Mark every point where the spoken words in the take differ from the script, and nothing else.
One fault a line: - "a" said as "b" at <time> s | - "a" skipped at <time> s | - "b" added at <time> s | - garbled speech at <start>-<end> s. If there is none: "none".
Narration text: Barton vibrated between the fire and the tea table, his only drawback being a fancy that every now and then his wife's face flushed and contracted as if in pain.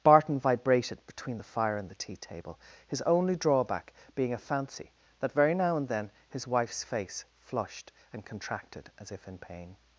- "every" said as "very" at 5.3 s